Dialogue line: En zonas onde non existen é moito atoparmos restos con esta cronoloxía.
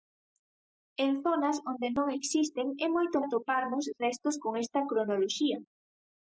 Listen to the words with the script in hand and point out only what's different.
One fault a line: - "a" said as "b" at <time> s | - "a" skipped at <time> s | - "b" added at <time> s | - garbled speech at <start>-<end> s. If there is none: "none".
none